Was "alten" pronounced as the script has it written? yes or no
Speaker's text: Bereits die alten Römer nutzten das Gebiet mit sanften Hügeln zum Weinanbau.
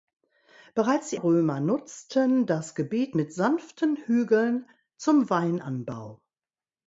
no